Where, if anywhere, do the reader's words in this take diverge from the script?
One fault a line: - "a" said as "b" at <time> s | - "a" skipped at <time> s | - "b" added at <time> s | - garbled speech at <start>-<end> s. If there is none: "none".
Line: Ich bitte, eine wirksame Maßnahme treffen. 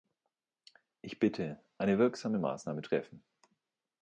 none